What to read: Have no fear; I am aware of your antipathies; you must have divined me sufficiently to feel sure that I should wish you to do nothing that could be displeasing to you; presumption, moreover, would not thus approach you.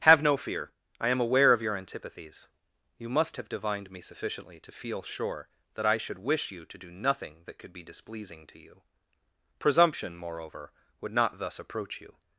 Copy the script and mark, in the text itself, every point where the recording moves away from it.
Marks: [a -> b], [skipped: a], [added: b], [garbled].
Have no fear; I am aware of your antipathies; you must have divined me sufficiently to feel sure that I should wish you to do nothing that could be displeasing to you; presumption, moreover, would not thus approach you.